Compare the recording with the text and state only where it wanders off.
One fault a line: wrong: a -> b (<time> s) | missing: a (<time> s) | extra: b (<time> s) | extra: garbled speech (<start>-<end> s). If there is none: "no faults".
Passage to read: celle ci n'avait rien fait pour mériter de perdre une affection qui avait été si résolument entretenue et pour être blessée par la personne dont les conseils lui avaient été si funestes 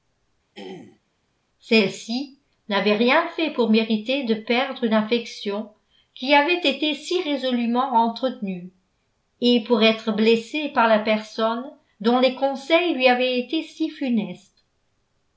no faults